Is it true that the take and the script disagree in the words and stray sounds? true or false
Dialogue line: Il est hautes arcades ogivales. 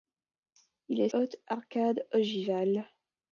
false